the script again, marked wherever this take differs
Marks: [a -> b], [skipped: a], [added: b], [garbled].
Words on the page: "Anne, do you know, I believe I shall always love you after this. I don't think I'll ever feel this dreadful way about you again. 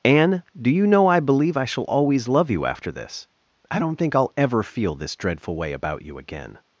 "Anne, do you know, I believe I shall always love you after this. I don't think I'll ever feel this dreadful way about you again.